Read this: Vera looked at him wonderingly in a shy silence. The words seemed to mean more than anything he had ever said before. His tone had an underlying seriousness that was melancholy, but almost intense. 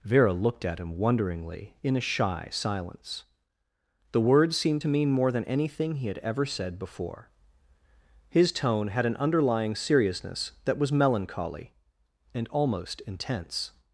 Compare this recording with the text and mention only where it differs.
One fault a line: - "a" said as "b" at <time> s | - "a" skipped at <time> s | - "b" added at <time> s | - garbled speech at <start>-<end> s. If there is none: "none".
- "but" said as "and" at 12.3 s